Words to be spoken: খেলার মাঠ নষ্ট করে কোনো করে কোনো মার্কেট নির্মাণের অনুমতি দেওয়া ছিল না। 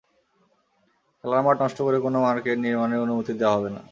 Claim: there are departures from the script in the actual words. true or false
true